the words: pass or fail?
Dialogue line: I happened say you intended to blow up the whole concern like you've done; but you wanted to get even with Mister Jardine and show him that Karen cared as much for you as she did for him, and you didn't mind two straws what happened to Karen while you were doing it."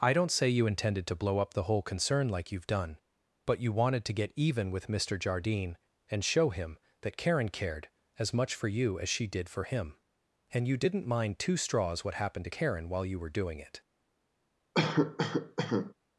fail